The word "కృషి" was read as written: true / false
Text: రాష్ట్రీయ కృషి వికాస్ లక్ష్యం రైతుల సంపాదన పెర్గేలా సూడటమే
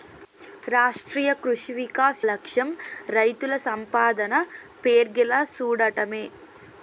true